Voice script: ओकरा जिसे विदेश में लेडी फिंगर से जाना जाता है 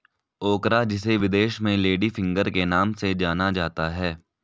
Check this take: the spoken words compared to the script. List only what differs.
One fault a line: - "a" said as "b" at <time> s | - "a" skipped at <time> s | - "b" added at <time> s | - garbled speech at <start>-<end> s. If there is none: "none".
- "के नाम" added at 2.5 s